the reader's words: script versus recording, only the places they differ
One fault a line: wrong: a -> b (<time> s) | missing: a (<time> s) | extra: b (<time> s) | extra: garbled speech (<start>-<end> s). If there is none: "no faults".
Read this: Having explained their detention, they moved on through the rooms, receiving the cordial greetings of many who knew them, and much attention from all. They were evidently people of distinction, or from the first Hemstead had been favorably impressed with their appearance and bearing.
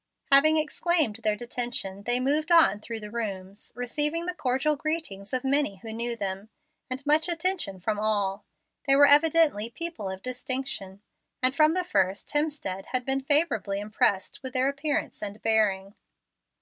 wrong: or -> and (11.4 s)